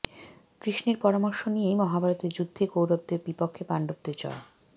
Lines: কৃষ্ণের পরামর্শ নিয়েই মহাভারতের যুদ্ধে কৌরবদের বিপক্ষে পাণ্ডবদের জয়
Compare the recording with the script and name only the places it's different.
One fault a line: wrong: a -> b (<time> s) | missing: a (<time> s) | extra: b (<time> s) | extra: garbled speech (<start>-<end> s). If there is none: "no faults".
no faults